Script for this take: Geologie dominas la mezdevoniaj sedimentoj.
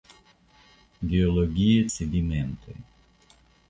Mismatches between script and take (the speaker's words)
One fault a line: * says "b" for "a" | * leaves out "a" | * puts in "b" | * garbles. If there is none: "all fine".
* leaves out "dominas la mezdevoniaj"